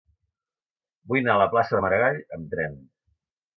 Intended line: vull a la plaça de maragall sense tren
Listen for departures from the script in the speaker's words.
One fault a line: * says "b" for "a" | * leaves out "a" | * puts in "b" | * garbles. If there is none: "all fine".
* puts in "anar"
* says "amb" for "sense"